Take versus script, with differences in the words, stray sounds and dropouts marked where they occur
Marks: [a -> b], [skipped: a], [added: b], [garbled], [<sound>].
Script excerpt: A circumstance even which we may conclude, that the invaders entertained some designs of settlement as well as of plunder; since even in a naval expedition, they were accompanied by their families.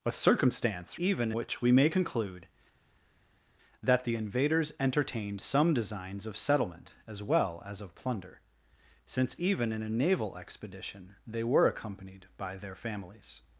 A circumstance even which we may conclude, that the invaders entertained some designs of settlement as well as of plunder; since even in a naval expedition, they were accompanied by their families.